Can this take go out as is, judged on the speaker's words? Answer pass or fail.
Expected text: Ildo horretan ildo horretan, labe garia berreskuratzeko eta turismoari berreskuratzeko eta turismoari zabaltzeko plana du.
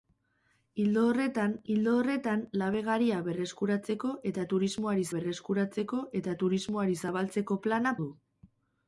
pass